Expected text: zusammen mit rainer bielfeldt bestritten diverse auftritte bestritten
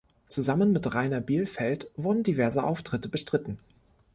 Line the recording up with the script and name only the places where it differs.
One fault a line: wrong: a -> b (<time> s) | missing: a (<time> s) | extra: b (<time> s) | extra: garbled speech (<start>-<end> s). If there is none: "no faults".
wrong: bestritten -> wurden (2.0 s)